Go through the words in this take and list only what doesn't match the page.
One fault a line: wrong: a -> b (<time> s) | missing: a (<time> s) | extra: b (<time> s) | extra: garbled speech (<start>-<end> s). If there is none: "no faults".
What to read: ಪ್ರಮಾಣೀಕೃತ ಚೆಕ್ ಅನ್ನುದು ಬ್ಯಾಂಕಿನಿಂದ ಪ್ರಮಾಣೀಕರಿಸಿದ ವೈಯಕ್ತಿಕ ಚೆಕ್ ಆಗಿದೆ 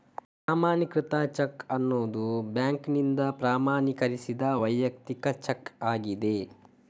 no faults